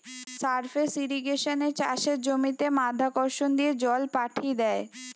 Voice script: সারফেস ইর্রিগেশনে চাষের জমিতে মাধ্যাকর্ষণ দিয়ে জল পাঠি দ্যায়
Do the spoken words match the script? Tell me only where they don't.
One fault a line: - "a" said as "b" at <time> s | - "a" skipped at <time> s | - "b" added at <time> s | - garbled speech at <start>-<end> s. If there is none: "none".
none